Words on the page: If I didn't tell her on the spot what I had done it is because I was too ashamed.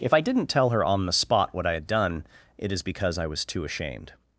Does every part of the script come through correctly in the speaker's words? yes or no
yes